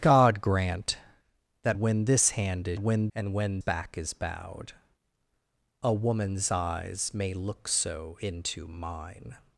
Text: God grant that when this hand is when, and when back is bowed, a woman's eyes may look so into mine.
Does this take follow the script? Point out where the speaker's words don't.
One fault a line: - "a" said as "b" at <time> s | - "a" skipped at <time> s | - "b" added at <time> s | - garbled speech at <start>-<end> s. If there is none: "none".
none